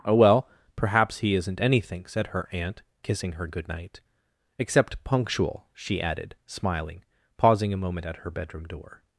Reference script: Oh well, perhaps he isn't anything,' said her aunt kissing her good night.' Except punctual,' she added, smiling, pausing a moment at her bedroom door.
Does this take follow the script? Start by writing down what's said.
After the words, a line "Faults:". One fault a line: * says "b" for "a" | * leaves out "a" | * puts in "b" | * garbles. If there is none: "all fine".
Oh well, perhaps he isn't anything,' said her aunt kissing her good night.' Except punctual,' she added, smiling, pausing a moment at her bedroom door.
Faults:
all fine